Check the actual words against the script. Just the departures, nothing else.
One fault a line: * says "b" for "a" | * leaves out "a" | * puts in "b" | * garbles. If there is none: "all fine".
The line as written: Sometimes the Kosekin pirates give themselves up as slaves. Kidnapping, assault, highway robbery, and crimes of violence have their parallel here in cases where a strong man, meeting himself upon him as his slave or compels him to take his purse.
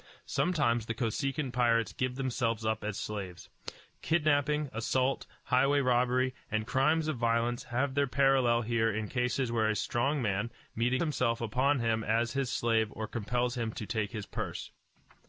all fine